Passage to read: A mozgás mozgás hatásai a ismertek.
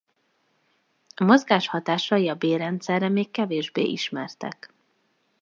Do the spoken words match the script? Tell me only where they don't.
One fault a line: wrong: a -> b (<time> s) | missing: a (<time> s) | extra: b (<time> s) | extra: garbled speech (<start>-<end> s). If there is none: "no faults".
missing: mozgás (1.7 s)
extra: bélrendszerre még kevésbé (2.4 s)